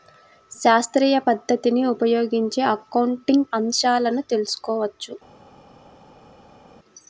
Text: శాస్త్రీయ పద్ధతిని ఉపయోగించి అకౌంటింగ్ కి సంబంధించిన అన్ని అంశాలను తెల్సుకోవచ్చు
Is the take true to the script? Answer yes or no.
no